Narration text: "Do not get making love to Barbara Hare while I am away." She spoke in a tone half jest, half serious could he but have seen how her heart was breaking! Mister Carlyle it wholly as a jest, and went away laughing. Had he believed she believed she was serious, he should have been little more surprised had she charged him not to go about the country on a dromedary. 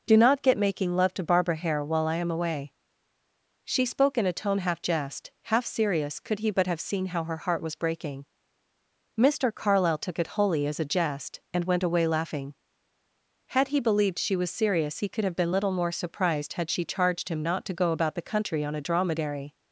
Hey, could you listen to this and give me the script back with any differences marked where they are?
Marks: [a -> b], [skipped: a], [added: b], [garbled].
"Do not get making love to Barbara Hare while I am away." She spoke in a tone half jest, half serious could he but have seen how her heart was breaking! Mister Carlyle [added: took] it wholly as a jest, and went away laughing. Had he believed she [skipped: believed she] was serious, he [should -> could] have been little more surprised had she charged him not to go about the country on a dromedary.